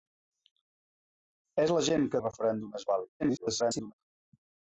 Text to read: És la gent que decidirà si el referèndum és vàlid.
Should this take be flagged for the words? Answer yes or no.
yes